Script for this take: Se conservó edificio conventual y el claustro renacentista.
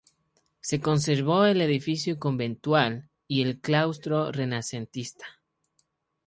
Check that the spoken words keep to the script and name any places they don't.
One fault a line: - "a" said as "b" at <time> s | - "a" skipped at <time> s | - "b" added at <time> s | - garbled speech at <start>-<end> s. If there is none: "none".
- "el" added at 1.4 s